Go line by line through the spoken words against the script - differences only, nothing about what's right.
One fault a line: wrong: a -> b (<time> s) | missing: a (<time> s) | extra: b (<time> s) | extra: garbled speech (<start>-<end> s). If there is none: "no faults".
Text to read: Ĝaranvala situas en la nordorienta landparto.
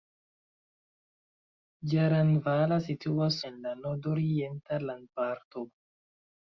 no faults